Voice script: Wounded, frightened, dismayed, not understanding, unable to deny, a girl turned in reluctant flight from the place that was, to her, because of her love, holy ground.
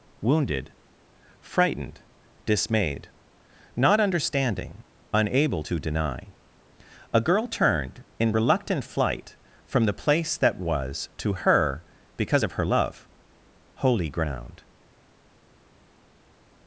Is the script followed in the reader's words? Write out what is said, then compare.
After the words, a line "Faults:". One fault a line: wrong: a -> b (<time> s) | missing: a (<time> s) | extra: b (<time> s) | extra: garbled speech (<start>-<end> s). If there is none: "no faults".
Wounded, frightened, dismayed, not understanding, unable to deny, a girl turned in reluctant flight from the place that was, to her, because of her love, holy ground.
Faults:
no faults